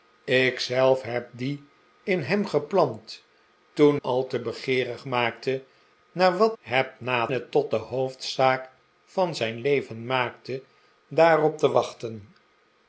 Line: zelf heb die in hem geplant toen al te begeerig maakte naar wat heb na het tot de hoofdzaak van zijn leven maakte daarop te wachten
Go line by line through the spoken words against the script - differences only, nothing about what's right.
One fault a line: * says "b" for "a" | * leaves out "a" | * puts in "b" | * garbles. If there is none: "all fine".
all fine